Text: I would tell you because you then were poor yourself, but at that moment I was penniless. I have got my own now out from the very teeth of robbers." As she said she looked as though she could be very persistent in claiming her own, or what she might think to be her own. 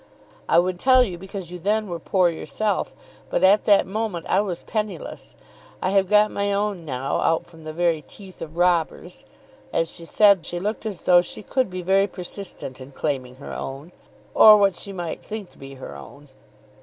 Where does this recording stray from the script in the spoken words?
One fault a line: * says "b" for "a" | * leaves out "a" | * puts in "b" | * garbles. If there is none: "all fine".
all fine